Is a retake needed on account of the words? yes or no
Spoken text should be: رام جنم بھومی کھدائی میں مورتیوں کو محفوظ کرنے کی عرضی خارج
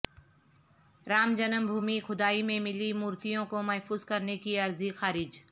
yes